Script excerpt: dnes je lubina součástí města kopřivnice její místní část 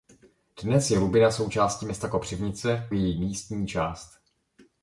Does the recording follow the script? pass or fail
pass